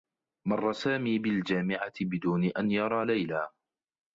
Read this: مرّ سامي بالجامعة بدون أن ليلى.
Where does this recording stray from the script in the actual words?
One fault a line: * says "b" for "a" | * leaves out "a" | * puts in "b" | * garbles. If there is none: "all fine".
* puts in "يرى"